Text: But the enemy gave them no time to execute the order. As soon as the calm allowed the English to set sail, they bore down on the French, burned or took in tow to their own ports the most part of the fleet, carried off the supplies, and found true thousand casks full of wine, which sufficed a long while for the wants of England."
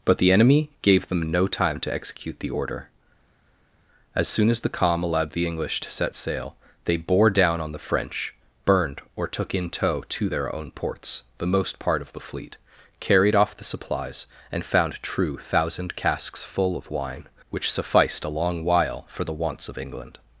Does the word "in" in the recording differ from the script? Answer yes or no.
no